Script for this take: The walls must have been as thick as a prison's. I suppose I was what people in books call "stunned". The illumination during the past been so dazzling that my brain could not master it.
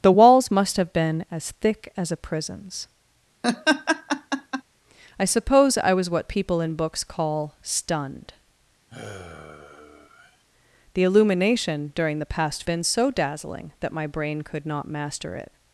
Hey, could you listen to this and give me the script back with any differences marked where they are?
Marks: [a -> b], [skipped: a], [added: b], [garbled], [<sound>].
The walls must have been as thick as a prison's. [laugh] I suppose I was what people in books call "stunned". [sigh] The illumination during the past been so dazzling that my brain could not master it.